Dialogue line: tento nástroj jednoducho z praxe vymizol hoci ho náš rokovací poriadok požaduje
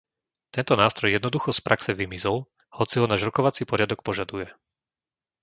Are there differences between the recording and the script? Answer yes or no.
no